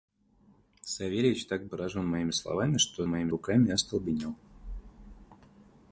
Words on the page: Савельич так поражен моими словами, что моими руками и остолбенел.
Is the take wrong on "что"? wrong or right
right